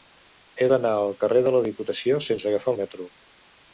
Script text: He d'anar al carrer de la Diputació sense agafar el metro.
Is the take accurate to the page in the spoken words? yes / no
yes